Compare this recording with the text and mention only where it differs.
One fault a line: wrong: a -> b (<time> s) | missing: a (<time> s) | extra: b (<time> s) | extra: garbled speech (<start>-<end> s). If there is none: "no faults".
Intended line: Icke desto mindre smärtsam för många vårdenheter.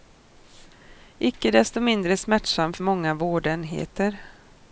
no faults